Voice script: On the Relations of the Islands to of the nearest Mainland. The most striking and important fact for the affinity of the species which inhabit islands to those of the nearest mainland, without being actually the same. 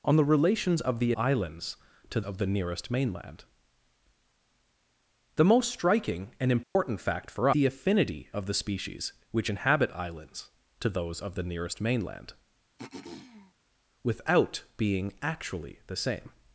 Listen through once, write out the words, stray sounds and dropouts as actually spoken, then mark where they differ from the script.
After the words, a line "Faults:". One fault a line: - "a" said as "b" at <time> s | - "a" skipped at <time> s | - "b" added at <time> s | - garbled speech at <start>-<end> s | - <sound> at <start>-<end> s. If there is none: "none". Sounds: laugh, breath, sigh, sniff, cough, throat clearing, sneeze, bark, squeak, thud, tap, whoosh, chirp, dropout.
On the Relations of the Islands to of the nearest Mainland. The most striking and important fact for the affinity of the species which inhabit islands to those of the nearest mainland, without being actually the same.
Faults:
- dropout at 6.6-6.8 s
- throat clearing at 12.8-13.5 s